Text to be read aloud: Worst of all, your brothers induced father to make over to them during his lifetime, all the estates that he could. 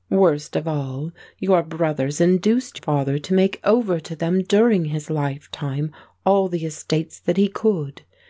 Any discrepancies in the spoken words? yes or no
no